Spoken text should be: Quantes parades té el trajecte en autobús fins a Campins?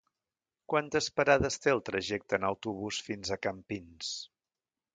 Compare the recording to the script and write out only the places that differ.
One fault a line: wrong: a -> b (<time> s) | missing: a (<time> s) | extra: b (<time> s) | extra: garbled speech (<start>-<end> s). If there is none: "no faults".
no faults